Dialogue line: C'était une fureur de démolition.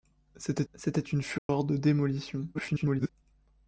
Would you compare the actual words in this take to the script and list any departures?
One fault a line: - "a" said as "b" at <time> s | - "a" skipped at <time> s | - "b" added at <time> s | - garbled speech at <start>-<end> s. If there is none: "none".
- "c'était" added at 0.7 s
- garbled speech at 2.5-3.1 s